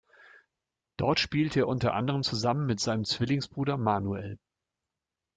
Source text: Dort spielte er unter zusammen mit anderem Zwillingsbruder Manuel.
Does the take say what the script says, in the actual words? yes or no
no